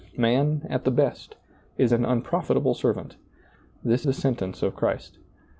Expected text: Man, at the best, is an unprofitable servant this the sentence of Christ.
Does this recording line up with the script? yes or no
yes